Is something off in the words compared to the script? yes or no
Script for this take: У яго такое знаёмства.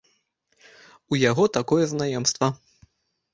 no